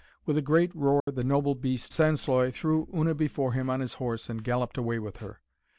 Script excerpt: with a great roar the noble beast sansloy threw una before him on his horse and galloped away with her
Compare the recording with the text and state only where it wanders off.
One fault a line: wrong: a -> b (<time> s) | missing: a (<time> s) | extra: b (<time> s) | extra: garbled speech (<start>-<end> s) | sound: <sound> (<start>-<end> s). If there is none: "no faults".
sound: dropout (1.0-1.1 s)